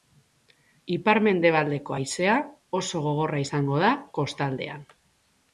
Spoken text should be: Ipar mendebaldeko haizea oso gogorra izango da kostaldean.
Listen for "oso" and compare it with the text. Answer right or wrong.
right